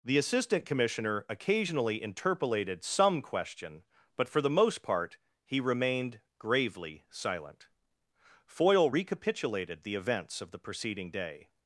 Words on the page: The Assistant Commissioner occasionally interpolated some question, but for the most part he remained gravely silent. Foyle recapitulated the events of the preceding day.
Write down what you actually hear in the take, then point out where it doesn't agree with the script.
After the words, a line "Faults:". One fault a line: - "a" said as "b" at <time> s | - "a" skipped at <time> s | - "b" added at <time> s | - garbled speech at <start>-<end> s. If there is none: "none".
The Assistant Commissioner occasionally interpolated some question, but for the most part he remained gravely silent. Foyle recapitulated the events of the preceding day.
Faults:
none